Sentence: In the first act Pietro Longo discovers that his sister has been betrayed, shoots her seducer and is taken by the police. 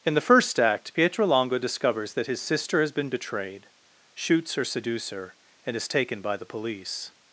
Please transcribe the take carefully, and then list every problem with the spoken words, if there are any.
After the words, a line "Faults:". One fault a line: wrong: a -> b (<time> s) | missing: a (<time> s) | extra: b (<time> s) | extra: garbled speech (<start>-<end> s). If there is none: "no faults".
In the first act Pietro Longo discovers that his sister has been betrayed, shoots her seducer and is taken by the police.
Faults:
no faults